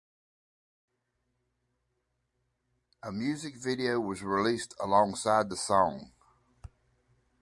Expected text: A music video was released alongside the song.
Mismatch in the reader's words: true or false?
false